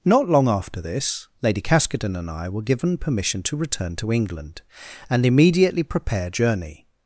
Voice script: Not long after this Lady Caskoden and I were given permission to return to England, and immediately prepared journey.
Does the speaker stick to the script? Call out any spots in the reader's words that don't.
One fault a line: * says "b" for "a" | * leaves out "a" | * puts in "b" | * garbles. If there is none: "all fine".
all fine